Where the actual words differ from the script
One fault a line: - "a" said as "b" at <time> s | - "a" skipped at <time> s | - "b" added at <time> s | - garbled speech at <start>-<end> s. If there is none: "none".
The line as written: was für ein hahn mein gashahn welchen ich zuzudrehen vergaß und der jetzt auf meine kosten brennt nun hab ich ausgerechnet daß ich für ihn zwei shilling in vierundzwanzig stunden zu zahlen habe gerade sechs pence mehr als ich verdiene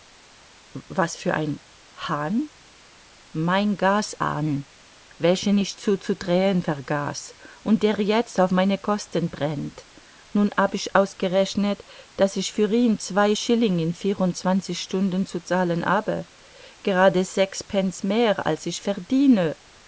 none